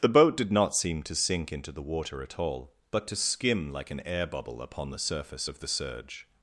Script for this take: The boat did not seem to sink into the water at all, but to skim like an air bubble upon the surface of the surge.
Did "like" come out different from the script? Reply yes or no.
no